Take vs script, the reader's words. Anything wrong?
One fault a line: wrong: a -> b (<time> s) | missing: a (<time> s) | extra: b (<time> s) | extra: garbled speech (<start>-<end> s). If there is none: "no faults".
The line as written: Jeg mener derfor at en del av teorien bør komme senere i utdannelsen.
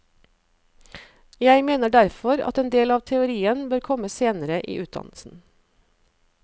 no faults